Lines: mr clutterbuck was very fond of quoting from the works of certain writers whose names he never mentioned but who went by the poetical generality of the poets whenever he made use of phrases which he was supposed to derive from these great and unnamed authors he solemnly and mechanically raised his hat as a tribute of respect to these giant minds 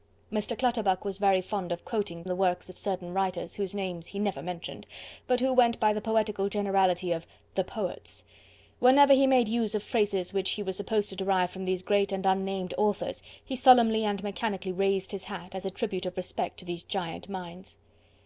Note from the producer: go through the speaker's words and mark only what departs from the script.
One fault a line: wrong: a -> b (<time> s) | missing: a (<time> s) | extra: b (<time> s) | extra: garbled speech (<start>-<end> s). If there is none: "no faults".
missing: from (2.2 s)